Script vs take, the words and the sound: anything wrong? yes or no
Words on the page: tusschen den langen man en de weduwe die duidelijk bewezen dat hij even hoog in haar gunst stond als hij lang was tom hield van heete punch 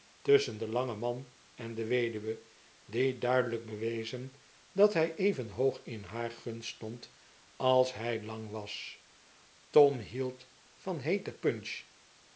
no